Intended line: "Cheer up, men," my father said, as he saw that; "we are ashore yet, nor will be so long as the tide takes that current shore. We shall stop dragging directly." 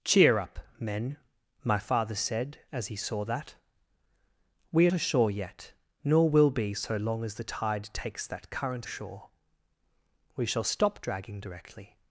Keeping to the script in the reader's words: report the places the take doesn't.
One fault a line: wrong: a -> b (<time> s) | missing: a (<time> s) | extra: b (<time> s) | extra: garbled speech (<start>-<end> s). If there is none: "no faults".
no faults